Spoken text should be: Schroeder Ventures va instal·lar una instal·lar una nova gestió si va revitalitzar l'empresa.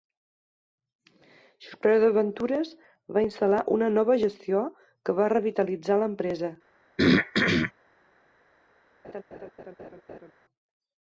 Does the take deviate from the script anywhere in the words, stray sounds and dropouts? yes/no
yes